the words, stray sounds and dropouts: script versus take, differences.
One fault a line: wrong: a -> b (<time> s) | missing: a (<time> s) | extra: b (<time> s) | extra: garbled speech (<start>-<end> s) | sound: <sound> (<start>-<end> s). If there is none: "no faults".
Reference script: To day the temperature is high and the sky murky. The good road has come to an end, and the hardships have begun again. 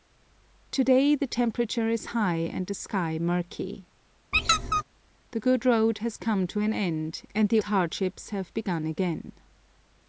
sound: squeak (4.3-4.8 s)